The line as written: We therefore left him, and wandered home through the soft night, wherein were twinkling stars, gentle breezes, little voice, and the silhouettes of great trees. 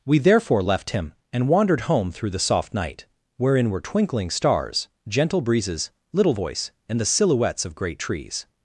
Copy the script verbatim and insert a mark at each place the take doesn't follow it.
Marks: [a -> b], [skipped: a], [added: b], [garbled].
We therefore left him, and wandered home through the soft night, wherein were twinkling stars, gentle breezes, little voice, and the silhouettes of great trees.